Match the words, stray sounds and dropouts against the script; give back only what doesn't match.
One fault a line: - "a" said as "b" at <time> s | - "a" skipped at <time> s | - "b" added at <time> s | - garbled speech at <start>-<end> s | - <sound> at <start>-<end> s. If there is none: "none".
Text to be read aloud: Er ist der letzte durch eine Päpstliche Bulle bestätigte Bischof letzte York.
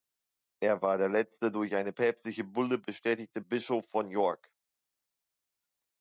- "ist" said as "war" at 0.8 s
- "letzte" said as "von" at 3.9 s